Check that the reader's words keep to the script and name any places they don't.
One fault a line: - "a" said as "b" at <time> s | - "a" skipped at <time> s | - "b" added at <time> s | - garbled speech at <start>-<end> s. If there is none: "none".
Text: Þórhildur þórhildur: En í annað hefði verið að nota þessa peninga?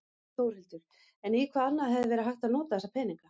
- "þórhildur" skipped at 0.8 s
- "hvað" added at 1.6 s
- "hægt" added at 2.3 s